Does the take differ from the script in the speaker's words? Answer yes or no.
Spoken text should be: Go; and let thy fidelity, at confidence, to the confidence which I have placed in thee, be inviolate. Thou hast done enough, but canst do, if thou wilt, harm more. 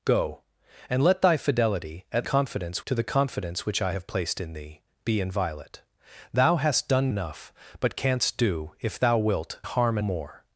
no